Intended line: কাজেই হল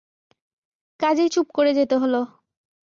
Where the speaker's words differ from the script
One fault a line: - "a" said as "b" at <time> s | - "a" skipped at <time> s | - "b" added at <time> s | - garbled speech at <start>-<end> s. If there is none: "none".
- "চুপ করে যেতে" added at 1.3 s